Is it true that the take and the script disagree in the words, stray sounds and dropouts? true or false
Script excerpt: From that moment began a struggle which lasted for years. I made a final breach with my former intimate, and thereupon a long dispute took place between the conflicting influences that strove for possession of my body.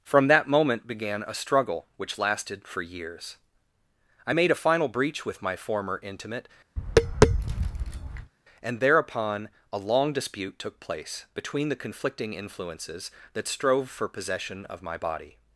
true